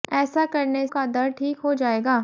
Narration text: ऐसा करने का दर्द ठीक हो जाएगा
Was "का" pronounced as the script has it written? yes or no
yes